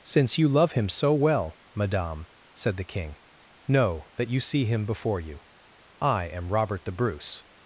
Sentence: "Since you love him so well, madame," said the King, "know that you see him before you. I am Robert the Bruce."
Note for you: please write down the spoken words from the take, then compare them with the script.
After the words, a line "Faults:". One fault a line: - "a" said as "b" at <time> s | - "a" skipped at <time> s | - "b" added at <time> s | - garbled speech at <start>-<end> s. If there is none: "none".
"Since you love him so well, madame," said the King, "know that you see him before you. I am Robert the Bruce."
Faults:
none